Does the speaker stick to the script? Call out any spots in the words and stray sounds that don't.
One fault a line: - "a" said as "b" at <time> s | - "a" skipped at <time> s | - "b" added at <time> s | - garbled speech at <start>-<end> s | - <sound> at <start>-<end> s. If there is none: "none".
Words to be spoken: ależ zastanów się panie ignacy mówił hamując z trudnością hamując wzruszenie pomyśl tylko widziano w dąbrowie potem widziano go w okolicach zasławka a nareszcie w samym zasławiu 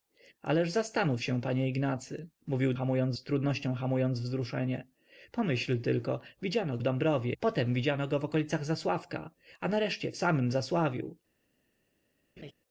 - laugh at 12.4-12.5 s